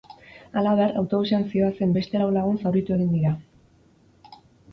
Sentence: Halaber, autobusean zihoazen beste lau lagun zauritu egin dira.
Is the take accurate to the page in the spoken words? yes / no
yes